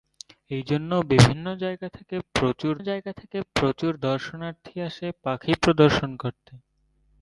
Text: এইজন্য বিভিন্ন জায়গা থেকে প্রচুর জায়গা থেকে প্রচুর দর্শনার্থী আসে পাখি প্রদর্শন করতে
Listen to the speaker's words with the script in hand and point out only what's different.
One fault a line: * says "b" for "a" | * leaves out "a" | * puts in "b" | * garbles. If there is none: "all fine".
all fine